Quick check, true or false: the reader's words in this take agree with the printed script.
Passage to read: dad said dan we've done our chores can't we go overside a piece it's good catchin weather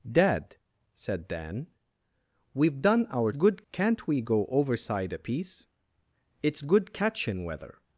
false